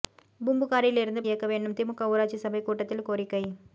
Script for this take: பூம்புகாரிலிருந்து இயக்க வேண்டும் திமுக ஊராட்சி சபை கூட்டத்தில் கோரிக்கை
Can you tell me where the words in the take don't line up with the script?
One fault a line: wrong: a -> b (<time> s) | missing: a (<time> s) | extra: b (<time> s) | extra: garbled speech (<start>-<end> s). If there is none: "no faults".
no faults